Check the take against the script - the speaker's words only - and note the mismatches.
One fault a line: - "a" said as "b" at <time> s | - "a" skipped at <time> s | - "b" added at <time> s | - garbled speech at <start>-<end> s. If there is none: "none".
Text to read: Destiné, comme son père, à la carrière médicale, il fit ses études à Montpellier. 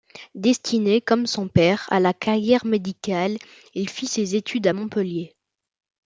none